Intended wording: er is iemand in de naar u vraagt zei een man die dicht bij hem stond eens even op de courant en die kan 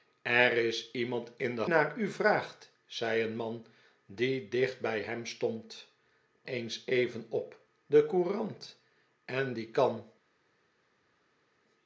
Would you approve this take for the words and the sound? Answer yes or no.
yes